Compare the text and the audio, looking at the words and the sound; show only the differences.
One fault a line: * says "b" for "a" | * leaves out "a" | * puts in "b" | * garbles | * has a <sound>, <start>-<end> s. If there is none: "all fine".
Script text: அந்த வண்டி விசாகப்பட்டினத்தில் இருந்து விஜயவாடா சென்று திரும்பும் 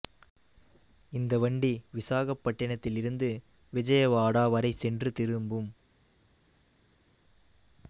* says "இந்த" for "அந்த"
* puts in "வரை"